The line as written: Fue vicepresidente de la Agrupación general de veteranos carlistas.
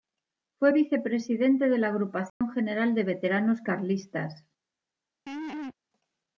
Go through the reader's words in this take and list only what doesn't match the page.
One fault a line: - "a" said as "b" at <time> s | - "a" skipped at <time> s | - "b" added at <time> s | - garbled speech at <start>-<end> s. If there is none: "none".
none